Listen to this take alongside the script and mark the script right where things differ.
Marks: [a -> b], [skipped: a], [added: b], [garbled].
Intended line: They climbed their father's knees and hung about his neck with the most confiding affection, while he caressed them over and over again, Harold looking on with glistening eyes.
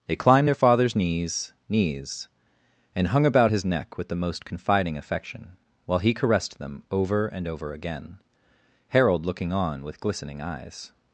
They climbed their father's knees [added: knees] and hung about his neck with the most confiding affection, while he caressed them over and over again, Harold looking on with glistening eyes.